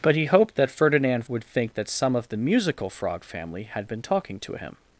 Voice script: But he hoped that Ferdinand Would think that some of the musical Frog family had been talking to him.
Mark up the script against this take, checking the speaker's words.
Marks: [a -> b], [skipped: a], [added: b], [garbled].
But he hoped that Ferdinand Would think that some of the musical Frog family had been talking to him.